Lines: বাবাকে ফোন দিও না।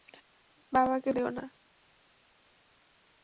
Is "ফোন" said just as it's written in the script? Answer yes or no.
no